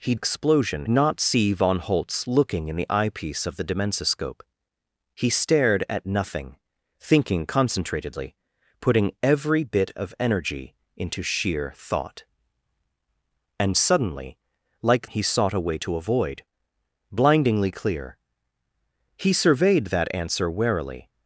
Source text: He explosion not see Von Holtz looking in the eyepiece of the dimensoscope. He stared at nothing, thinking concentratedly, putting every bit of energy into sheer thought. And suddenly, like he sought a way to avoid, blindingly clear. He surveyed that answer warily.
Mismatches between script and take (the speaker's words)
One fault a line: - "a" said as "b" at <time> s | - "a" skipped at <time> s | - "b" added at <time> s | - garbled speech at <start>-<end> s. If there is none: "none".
none